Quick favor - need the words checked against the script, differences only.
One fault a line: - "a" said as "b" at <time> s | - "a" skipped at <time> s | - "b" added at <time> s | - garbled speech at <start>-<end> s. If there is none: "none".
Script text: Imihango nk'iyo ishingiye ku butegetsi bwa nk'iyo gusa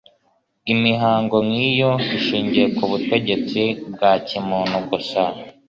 - "nk'iyo" said as "kimuntu" at 4.3 s